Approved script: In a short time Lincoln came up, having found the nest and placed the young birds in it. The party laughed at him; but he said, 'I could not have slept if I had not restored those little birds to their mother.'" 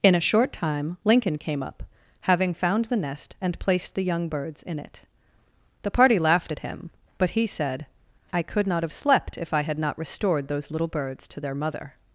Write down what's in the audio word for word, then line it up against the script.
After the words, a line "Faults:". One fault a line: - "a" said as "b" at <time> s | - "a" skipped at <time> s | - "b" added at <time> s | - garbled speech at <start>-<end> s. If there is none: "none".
In a short time Lincoln came up, having found the nest and placed the young birds in it. The party laughed at him; but he said, 'I could not have slept if I had not restored those little birds to their mother.'"
Faults:
none